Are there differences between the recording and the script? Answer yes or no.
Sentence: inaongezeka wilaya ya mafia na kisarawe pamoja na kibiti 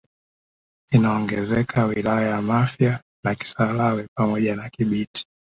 no